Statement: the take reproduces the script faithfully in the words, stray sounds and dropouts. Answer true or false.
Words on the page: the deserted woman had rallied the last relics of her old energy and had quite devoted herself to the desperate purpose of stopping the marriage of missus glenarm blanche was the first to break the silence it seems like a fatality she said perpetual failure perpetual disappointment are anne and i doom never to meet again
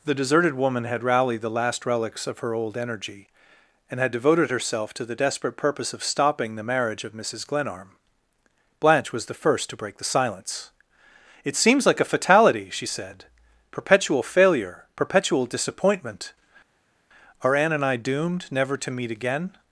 false